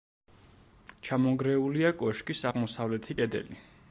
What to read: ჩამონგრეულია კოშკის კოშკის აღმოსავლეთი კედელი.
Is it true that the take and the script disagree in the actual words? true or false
true